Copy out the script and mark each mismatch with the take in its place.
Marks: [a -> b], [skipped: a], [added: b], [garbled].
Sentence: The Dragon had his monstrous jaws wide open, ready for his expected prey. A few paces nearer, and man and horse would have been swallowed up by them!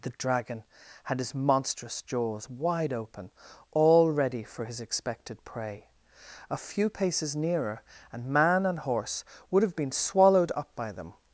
The Dragon had his monstrous jaws wide open, [added: all] ready for his expected prey. A few paces nearer, and man and horse would have been swallowed up by them!